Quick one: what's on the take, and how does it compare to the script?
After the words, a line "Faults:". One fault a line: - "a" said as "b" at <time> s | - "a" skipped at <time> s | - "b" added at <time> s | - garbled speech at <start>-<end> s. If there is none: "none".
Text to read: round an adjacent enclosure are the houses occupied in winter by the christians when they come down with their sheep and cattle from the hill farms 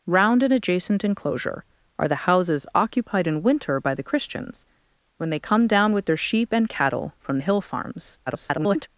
round an adjacent enclosure are the houses occupied in winter by the christians when they come down with their sheep and cattle from the hill farms [garbled]
Faults:
- garbled speech at 8.3-8.9 s